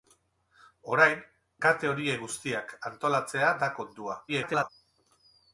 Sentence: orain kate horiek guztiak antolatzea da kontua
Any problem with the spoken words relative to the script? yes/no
yes